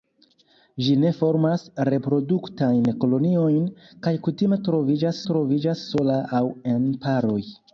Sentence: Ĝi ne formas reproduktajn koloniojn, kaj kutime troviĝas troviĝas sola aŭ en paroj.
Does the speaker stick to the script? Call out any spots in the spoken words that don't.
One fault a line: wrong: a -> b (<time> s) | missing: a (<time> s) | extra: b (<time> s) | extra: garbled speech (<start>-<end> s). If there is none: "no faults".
no faults